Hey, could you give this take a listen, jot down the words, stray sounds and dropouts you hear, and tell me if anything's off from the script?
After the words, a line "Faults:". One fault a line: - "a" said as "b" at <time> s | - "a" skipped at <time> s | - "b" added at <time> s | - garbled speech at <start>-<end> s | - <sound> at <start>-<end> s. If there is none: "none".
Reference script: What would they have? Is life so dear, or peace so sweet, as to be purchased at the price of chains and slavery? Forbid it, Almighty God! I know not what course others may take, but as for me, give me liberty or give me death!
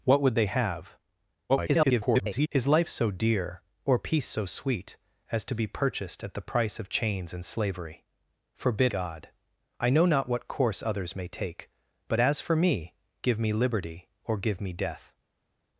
What would they have? [garbled] Is life so dear, or peace so sweet, as to be purchased at the price of chains and slavery? Forbid God! I know not what course others may take, but as for me, give me liberty or give me death!
Faults:
- garbled speech at 1.5-2.5 s
- "it Almighty" skipped at 8.9 s